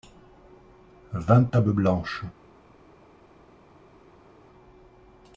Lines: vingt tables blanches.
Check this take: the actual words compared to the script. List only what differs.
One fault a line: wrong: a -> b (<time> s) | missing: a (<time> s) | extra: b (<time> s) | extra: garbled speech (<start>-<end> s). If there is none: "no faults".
no faults